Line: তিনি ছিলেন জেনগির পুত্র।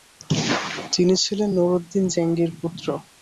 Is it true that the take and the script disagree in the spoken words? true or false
true